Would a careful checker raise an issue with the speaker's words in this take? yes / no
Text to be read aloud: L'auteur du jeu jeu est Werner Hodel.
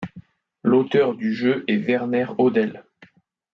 yes